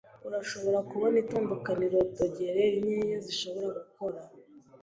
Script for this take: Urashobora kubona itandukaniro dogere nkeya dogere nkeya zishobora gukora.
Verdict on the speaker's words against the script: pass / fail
fail